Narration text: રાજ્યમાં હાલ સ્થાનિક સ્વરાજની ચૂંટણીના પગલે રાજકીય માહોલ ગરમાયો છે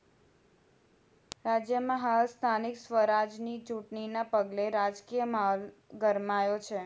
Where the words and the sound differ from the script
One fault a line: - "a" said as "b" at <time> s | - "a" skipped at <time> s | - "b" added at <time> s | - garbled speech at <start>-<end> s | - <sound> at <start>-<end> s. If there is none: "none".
none